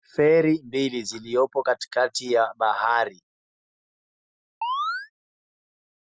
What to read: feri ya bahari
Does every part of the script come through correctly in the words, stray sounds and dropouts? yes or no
no